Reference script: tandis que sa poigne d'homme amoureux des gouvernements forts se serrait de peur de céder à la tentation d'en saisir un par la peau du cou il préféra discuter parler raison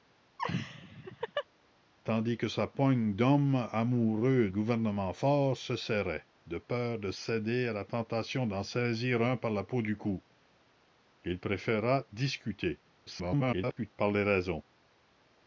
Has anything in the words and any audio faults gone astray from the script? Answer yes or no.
yes